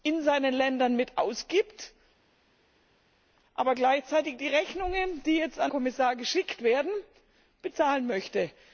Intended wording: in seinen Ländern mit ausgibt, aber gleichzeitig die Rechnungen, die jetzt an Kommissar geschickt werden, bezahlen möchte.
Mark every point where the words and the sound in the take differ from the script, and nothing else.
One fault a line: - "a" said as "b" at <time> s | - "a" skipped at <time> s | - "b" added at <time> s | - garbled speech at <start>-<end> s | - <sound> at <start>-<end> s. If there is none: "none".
none